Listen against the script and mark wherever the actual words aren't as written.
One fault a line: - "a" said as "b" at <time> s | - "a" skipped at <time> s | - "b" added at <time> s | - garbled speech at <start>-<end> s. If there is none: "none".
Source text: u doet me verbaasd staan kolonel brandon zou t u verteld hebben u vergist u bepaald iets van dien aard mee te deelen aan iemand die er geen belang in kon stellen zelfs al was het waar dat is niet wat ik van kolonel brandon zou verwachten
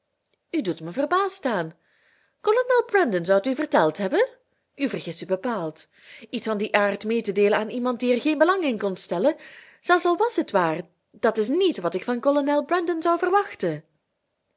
none